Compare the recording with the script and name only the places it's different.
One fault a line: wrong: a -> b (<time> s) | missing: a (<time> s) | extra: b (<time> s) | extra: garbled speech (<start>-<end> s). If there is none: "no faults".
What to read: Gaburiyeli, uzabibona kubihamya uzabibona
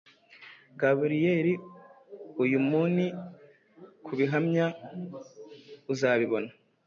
wrong: uzabibona -> uyumuni (2.4 s)